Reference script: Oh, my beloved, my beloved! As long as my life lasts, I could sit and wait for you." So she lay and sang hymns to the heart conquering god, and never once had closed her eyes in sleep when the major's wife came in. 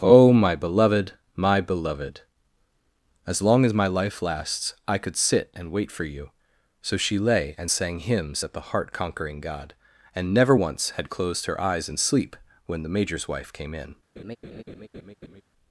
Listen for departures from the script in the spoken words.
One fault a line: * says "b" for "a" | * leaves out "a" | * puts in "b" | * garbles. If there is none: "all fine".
* says "at" for "to"